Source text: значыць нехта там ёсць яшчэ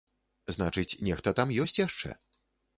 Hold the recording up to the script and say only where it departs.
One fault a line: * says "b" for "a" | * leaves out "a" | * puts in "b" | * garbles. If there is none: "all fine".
all fine